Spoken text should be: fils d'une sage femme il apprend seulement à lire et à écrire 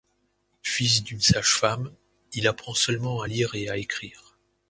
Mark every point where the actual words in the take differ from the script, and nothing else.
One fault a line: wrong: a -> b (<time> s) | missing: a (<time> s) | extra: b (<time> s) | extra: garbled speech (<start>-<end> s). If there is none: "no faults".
no faults